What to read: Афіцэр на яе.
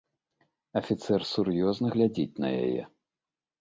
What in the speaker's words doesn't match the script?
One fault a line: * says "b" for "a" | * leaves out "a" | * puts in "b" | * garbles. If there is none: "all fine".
* puts in "сур'ёзна глядзіць"